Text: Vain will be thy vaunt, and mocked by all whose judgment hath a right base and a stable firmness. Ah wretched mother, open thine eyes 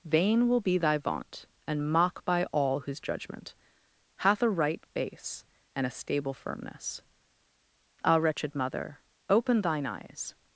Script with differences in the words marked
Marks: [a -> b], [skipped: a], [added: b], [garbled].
Vain will be thy vaunt, and [mocked -> mock] by all whose judgment hath a right base and a stable firmness. Ah wretched mother, open thine eyes